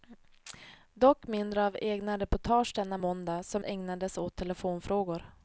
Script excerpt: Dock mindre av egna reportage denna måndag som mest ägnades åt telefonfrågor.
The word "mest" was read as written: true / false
false